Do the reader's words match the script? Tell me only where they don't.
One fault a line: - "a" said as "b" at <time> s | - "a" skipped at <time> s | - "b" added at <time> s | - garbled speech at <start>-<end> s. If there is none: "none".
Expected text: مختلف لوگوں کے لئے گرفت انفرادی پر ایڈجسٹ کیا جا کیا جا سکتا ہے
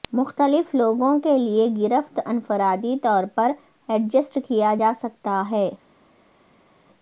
- "طور" added at 3.0 s
- "کیا جا" skipped at 4.9 s